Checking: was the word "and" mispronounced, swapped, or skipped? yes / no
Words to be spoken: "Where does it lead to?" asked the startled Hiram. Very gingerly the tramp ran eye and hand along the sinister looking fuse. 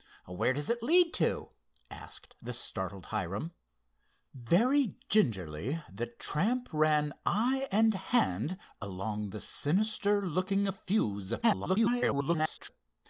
no